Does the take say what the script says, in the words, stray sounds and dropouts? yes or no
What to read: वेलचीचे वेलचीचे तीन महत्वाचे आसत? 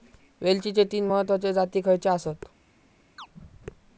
no